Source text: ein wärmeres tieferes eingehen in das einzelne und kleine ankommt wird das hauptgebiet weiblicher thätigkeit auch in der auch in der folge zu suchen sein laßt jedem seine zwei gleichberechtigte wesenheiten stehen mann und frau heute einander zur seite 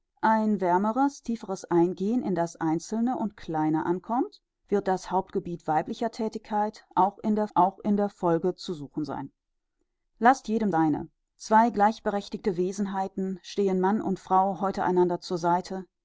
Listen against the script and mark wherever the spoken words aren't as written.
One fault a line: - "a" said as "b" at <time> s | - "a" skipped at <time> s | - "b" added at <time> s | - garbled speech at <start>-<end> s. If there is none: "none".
none